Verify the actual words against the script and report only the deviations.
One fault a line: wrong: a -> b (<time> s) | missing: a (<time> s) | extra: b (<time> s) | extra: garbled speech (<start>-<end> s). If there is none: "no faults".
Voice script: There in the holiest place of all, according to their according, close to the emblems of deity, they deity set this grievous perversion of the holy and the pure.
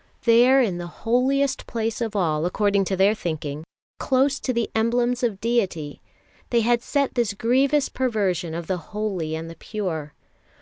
wrong: according -> thinking (3.1 s)
wrong: deity -> had (6.6 s)